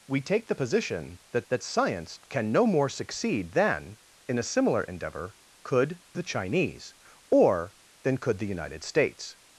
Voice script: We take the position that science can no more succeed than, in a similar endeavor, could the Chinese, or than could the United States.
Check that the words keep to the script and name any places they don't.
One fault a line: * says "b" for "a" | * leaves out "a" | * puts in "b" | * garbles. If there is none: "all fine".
* puts in "that"